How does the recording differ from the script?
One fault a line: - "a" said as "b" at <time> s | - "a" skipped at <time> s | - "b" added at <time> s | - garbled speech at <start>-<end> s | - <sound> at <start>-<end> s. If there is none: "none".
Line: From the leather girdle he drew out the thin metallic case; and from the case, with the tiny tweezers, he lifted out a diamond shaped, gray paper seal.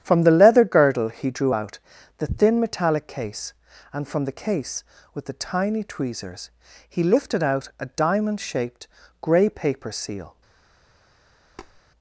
- tap at 11.6-11.8 s